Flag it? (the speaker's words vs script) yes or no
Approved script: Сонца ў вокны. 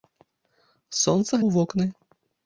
no